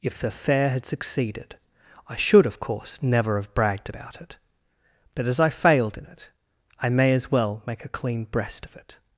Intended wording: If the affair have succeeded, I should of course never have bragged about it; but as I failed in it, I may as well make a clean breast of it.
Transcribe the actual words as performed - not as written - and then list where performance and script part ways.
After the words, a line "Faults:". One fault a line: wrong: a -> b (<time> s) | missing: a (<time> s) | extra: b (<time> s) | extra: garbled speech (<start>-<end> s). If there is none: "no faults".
If the affair had succeeded, I should of course never have bragged about it; but as I failed in it, I may as well make a clean breast of it.
Faults:
wrong: have -> had (0.7 s)